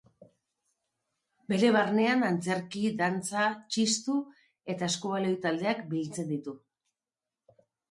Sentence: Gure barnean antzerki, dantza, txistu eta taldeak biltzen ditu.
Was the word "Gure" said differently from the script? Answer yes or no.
yes